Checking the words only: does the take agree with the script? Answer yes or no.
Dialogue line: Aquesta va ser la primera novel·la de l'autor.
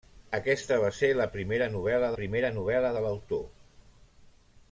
no